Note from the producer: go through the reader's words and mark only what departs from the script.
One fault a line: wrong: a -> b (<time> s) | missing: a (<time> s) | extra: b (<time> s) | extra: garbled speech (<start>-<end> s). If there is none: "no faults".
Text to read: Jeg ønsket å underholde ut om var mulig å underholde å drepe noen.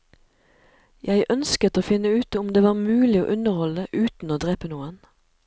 wrong: underholde -> finne (1.9 s)
extra: det (2.5 s)
extra: uten (3.9 s)